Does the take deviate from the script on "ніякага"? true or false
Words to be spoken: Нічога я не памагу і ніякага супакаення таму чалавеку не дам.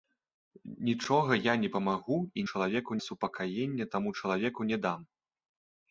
true